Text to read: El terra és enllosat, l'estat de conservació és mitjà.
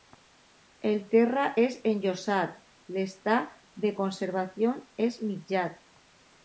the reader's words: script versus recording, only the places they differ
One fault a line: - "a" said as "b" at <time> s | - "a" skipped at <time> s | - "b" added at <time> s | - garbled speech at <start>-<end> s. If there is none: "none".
none